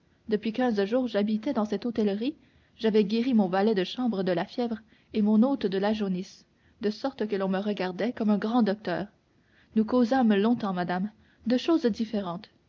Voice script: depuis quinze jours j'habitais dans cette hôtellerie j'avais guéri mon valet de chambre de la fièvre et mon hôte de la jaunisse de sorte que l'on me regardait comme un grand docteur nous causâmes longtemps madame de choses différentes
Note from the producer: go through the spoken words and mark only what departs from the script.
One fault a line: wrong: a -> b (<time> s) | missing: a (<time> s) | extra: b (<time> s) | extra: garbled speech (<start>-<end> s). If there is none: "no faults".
no faults